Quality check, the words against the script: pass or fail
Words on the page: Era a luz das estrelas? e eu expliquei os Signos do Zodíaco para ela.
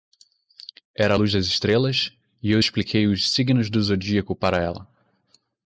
pass